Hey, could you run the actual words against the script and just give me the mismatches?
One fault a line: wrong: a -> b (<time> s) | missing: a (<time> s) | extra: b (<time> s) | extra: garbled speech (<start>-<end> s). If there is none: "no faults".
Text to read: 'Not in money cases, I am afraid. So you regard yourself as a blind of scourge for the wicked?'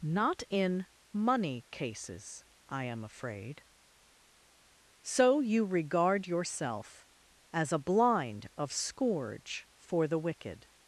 no faults